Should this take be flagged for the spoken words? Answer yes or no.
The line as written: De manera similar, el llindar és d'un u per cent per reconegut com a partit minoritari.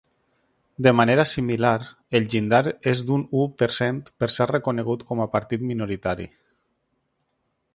yes